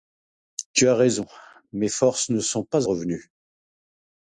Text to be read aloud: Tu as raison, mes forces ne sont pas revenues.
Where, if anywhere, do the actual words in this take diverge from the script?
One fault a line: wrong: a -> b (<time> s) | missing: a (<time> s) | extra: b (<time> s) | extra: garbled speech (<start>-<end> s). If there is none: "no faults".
no faults